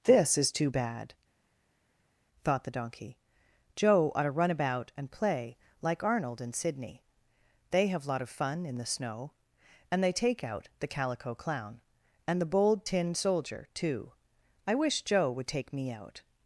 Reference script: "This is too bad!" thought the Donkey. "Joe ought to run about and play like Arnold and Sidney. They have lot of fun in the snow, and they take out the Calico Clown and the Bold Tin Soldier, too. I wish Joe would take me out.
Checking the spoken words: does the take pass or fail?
pass